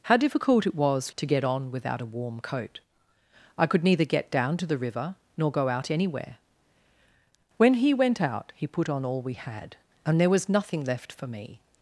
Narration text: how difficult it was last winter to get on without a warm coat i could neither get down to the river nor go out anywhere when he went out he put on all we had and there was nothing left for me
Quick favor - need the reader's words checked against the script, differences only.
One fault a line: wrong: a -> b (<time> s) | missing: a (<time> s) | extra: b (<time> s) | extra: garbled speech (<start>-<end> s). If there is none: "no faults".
missing: last winter (1.1 s)